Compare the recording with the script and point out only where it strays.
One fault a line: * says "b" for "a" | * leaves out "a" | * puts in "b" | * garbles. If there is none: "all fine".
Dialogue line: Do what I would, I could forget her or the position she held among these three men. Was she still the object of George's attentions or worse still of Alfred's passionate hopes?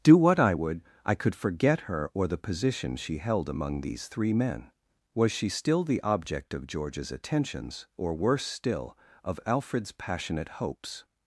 all fine